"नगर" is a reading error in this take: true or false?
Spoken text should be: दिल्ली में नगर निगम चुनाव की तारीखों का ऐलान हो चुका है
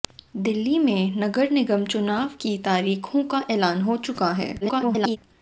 false